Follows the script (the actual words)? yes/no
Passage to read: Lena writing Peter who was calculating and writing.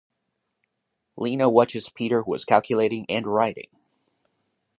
no